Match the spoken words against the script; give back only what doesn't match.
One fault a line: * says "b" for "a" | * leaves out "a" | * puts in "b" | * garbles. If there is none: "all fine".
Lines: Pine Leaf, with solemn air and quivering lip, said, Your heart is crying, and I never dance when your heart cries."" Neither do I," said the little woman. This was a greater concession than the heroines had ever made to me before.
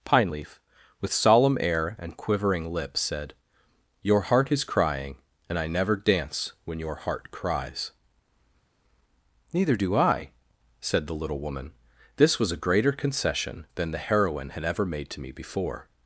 * says "heroine" for "heroines"